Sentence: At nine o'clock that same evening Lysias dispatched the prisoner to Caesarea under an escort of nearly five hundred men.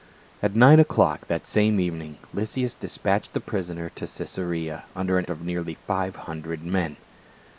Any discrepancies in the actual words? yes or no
yes